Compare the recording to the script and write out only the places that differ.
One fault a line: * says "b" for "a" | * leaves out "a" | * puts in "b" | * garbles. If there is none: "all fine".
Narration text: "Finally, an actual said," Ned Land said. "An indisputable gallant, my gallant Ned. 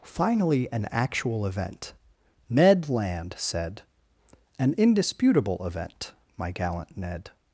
* says "event" for "said"
* says "event" for "gallant"